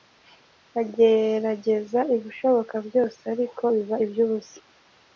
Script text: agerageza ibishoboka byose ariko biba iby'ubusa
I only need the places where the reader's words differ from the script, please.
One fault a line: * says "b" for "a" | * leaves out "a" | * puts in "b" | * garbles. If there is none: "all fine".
all fine